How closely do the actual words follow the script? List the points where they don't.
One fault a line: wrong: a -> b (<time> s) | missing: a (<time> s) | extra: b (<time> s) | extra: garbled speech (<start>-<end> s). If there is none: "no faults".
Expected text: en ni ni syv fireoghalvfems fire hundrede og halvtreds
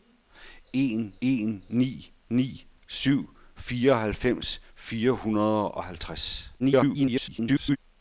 extra: en (1.2 s)
extra: garbled speech (6.6-7.8 s)